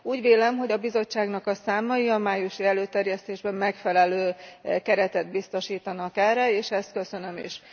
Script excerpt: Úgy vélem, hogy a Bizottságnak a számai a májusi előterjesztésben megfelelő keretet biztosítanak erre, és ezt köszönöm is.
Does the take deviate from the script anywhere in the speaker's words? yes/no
no